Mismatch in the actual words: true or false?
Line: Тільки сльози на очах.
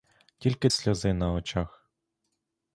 false